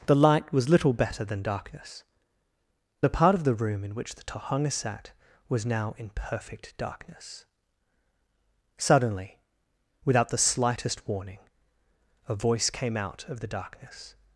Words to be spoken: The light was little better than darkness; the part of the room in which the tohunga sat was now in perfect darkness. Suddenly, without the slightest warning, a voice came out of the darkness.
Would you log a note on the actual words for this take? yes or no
no